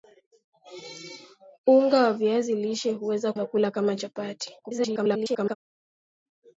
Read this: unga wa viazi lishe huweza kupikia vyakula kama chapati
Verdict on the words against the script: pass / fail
fail